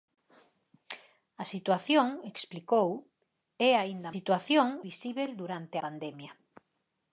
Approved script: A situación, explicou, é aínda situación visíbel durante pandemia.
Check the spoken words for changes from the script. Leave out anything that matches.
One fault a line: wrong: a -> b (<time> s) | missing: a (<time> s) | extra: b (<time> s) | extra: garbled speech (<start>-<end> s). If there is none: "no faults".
no faults